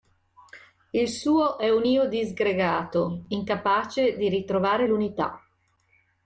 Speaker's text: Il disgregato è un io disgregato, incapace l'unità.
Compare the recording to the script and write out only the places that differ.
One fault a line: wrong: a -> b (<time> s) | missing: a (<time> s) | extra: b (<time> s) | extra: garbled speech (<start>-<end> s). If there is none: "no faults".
wrong: disgregato -> suo (1.1 s)
extra: di ritrovare (4.2 s)